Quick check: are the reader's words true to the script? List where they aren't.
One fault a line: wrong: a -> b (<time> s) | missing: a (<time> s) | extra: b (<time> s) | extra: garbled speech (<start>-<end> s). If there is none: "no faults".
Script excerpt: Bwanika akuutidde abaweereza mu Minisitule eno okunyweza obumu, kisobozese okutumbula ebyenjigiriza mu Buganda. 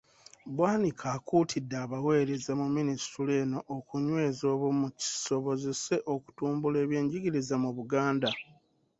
no faults